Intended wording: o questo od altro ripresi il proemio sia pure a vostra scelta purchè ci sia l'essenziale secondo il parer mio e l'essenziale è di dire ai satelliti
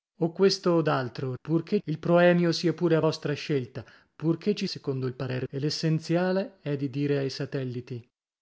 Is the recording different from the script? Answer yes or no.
yes